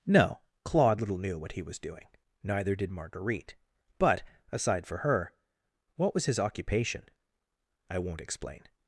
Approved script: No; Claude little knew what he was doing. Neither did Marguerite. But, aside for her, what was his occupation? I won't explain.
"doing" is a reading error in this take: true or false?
false